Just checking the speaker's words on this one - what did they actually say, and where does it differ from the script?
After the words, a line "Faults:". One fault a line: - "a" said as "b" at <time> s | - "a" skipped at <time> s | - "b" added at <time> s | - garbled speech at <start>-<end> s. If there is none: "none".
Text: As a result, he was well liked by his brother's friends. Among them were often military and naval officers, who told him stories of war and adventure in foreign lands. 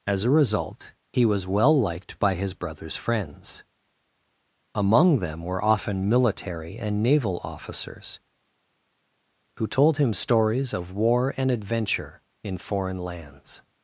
As a result, he was well liked by his brother's friends. Among them were often military and naval officers, who told him stories of war and adventure in foreign lands.
Faults:
none